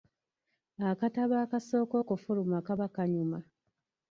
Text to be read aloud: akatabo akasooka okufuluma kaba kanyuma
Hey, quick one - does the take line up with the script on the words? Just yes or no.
yes